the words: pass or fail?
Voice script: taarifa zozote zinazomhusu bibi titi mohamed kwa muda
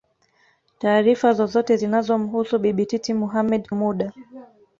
fail